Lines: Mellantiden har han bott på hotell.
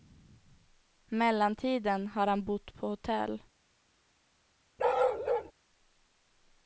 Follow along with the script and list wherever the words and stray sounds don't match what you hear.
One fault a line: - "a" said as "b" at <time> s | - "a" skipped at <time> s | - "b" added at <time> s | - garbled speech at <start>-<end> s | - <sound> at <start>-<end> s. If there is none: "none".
- bark at 4.8-5.5 s